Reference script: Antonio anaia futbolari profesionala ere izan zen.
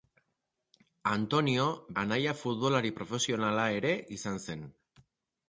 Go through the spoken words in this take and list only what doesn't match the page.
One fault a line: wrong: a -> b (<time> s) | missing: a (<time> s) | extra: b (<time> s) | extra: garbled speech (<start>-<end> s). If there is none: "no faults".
no faults